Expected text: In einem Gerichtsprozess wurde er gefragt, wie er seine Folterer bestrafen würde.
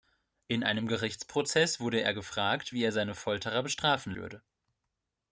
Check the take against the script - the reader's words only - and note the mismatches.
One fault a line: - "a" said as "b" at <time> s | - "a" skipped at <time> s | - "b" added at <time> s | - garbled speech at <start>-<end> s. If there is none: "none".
none